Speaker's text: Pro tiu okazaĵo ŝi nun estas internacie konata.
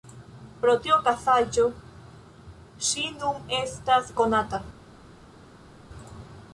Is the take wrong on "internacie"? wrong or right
wrong